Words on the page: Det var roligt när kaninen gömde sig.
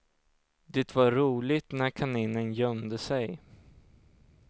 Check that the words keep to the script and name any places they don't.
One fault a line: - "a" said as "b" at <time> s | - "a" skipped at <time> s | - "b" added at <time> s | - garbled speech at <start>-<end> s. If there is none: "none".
none